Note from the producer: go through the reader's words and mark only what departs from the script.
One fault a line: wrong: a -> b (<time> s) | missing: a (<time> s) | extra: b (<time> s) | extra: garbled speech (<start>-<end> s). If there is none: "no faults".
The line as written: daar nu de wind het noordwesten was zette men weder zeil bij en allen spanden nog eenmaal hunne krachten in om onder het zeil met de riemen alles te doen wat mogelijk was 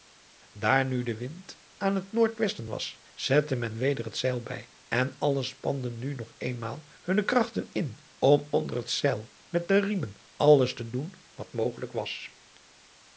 extra: aan (1.8 s)
extra: het (4.0 s)
extra: nu (6.0 s)